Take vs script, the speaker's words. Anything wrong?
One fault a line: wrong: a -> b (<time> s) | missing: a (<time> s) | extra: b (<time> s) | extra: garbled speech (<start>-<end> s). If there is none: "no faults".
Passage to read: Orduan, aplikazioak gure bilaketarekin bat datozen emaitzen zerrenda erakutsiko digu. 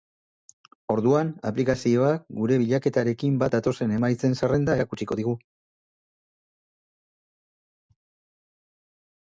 no faults